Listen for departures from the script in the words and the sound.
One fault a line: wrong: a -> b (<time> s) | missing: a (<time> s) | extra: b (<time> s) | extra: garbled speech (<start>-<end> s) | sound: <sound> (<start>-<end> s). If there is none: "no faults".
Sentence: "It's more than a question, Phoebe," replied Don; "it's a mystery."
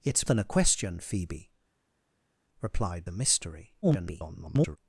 missing: more (0.3 s)
missing: Don it's (3.1 s)
extra: garbled speech (3.8-4.8 s)